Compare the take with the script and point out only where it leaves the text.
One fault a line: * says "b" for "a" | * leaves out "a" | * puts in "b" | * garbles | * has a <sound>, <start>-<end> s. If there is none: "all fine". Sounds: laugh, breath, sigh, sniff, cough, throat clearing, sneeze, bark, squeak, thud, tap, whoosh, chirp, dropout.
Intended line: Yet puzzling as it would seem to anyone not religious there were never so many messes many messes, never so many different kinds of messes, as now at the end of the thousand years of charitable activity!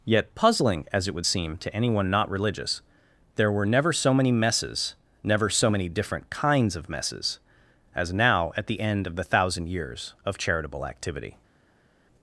* leaves out "many messes"